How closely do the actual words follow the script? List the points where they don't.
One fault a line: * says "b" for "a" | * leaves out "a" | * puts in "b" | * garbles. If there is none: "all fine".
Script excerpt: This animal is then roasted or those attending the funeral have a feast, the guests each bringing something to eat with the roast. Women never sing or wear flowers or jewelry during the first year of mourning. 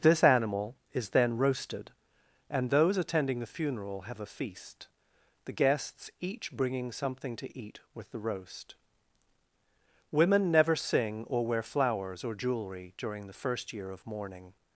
* says "and" for "or"